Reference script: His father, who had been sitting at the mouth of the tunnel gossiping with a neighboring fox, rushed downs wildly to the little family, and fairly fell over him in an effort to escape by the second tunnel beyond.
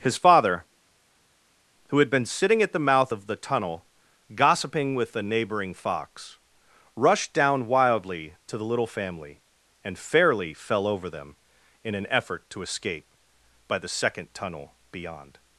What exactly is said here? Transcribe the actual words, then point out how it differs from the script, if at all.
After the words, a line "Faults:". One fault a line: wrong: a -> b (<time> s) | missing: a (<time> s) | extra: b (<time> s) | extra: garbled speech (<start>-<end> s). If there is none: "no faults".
His father, who had been sitting at the mouth of the tunnel gossiping with a neighboring fox, rushed down wildly to the little family, and fairly fell over them in an effort to escape by the second tunnel beyond.
Faults:
wrong: downs -> down (7.3 s)
wrong: him -> them (11.1 s)